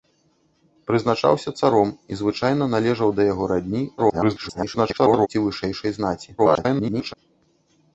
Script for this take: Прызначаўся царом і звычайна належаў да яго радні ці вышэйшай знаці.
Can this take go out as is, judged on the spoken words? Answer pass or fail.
fail